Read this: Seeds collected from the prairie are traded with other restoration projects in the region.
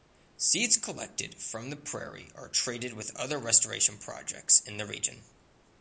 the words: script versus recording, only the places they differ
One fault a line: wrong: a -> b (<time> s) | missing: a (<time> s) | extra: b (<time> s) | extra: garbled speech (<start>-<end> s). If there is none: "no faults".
no faults